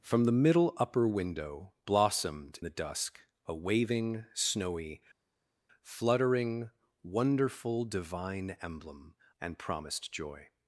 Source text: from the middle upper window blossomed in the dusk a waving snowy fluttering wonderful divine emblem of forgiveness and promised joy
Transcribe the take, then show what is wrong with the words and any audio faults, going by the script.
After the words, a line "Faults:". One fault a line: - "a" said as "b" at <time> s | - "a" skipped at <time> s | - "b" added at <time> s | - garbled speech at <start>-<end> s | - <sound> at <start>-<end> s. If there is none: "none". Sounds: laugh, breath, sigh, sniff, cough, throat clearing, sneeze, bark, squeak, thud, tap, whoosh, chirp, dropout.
from the middle upper window blossomed the dusk a waving snowy fluttering wonderful divine emblem and promised joy
Faults:
- "in" skipped at 2.6 s
- "of forgiveness" skipped at 9.2 s